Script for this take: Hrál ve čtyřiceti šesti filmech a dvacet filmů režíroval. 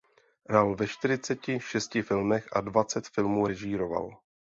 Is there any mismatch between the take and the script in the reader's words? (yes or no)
no